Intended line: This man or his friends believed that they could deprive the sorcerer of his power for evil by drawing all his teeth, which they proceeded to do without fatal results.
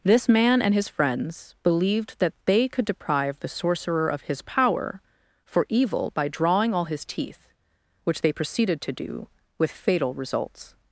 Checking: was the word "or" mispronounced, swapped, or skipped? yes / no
yes